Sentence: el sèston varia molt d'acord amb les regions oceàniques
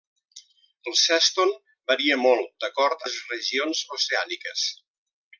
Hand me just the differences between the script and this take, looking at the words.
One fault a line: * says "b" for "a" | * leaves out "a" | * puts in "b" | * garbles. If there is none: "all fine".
* leaves out "amb"